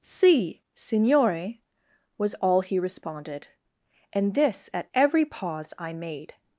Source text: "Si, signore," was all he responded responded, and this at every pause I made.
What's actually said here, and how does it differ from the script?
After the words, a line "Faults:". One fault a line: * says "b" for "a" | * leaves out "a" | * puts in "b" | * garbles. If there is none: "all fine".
"Si, signore," was all he responded, and this at every pause I made.
Faults:
* leaves out "responded"